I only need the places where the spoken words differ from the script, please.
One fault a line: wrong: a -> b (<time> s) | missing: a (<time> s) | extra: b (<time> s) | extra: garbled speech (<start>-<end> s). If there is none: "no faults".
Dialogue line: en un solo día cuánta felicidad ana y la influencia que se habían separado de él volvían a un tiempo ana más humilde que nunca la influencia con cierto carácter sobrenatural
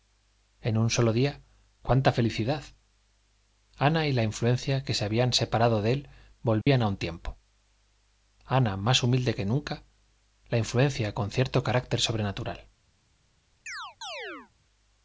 no faults